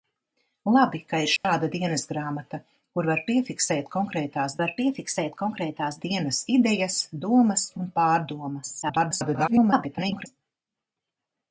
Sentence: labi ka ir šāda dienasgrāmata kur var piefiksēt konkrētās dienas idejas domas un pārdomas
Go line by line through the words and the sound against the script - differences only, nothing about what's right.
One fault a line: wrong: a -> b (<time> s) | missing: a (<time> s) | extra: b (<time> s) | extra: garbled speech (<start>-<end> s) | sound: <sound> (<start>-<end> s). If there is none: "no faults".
sound: dropout (1.4-1.4 s)
extra: var piefiksēt konkrētās (4.6 s)
extra: garbled speech (8.8-10.3 s)